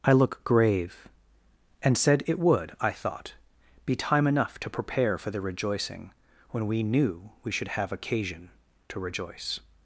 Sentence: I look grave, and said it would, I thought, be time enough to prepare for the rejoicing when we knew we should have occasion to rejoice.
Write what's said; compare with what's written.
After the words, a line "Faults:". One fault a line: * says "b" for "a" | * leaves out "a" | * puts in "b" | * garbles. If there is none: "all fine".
I look grave, and said it would, I thought, be time enough to prepare for the rejoicing when we knew we should have occasion to rejoice.
Faults:
all fine